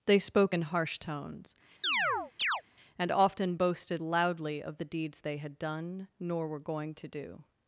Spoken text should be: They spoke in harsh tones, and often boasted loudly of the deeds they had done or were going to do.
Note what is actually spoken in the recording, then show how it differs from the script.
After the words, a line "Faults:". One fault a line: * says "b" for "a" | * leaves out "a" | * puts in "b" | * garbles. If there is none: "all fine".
They spoke in harsh tones, and often boasted loudly of the deeds they had done nor were going to do.
Faults:
* says "nor" for "or"